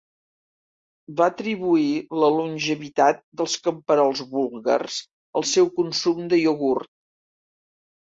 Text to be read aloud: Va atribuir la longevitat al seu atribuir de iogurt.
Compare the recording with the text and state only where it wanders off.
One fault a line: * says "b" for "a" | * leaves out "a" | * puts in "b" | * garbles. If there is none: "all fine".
* puts in "dels camperols búlgars"
* says "consum" for "atribuir"